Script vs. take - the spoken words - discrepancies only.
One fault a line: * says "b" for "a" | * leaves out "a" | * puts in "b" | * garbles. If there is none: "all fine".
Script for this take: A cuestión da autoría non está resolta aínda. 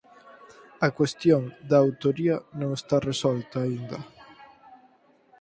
all fine